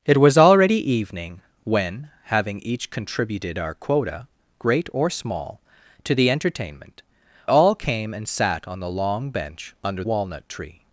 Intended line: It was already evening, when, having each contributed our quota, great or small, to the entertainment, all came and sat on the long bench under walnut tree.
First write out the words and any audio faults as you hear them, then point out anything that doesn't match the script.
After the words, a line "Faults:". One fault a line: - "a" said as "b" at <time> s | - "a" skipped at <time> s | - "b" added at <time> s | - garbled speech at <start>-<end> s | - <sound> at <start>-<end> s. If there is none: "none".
It was already evening, when, having each contributed our quota, great or small, to the entertainment, all came and sat on the long bench under walnut tree.
Faults:
none